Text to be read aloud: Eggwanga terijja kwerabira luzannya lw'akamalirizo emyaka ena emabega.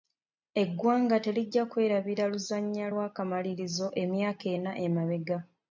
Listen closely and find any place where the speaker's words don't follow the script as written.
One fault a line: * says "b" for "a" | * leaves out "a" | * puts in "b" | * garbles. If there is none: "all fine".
all fine